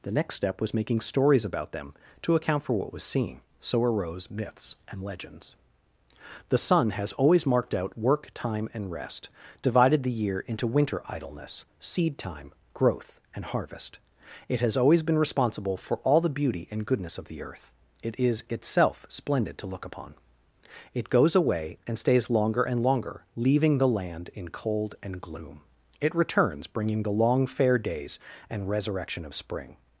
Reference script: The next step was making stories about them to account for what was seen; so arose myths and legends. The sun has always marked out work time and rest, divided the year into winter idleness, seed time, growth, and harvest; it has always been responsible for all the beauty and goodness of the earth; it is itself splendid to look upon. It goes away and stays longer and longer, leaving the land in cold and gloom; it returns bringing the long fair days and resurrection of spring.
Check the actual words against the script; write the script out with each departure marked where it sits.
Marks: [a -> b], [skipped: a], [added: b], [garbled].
The next step was making stories about them to account for what was seen; so arose myths and legends. The sun has always marked out work time and rest, divided the year into winter idleness, seed time, growth, and harvest; it has always been responsible for all the beauty and goodness of the earth; it is itself splendid to look upon. It goes away and stays longer and longer, leaving the land in cold and gloom; it returns bringing the long fair days and resurrection of spring.